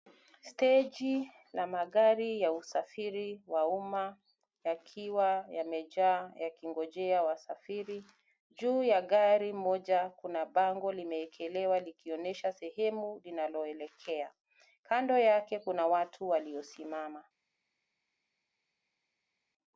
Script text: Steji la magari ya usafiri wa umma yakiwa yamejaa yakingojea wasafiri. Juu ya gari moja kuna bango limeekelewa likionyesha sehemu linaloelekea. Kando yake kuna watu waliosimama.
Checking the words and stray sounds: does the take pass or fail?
pass